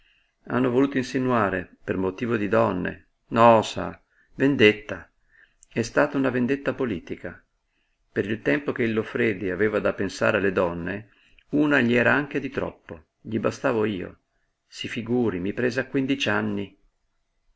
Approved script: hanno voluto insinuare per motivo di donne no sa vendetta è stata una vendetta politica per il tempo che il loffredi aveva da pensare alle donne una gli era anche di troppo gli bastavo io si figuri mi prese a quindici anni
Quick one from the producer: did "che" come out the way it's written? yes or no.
yes